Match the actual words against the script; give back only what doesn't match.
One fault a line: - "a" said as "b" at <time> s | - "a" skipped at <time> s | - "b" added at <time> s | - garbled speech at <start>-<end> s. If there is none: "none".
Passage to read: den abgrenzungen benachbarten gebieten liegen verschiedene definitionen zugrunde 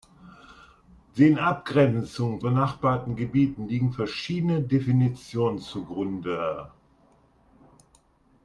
none